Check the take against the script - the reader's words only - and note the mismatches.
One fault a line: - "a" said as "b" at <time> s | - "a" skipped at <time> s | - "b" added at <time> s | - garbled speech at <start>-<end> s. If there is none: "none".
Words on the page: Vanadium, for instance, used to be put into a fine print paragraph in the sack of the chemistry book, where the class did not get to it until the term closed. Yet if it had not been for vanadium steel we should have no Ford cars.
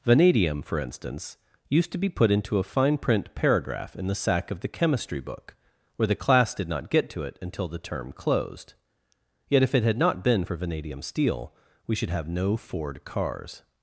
none